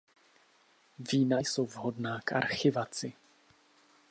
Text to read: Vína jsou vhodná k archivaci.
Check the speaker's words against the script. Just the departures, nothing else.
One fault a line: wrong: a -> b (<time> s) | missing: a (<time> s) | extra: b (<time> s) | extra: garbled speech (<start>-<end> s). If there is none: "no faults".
no faults